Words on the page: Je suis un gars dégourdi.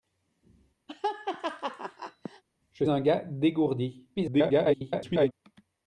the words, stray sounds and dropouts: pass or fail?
fail